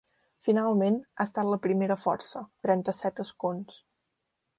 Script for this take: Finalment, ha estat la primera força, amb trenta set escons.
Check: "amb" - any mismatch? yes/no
yes